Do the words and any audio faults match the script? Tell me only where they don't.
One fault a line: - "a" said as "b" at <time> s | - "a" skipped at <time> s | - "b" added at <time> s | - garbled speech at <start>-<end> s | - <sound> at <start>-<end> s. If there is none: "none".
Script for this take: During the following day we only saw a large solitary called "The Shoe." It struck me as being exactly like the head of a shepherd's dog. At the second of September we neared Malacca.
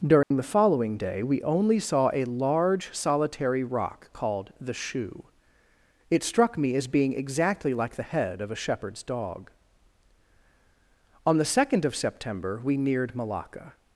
- dropout at 0.2-0.3 s
- "rock" added at 3.6 s
- "At" said as "On" at 11.2 s